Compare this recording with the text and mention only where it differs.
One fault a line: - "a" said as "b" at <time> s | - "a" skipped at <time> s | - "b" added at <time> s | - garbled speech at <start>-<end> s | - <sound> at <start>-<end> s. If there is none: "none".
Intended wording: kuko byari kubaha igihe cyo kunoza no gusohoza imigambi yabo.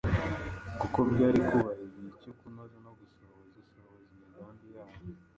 - "gusohoza" added at 3.6 s